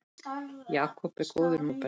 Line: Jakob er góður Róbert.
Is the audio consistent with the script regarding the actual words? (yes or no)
yes